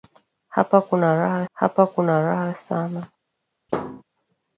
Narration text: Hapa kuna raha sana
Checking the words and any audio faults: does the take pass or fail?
fail